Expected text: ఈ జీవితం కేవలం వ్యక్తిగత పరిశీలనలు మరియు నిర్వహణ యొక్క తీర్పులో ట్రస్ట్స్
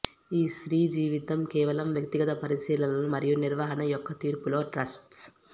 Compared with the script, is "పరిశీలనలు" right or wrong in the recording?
right